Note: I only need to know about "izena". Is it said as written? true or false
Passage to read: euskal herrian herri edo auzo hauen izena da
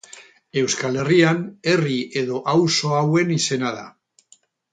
true